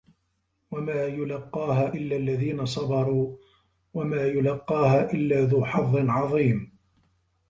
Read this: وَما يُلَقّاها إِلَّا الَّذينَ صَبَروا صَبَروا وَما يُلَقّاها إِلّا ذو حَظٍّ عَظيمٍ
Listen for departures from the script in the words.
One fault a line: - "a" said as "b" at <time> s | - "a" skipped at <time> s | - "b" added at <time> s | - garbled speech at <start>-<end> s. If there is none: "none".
- "صَبَروا" skipped at 3.4 s